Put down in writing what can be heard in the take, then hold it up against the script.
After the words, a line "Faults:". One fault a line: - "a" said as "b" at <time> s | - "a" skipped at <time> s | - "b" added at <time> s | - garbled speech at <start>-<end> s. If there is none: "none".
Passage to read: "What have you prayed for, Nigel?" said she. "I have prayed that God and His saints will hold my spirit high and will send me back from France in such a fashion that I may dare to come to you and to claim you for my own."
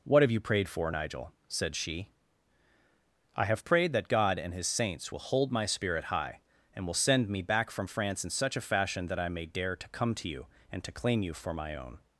"What have you prayed for, Nigel?" said she. "I have prayed that God and His saints will hold my spirit high and will send me back from France in such a fashion that I may dare to come to you and to claim you for my own."
Faults:
none